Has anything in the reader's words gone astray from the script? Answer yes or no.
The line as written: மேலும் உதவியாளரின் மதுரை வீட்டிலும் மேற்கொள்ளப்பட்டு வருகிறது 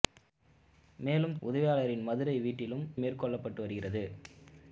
no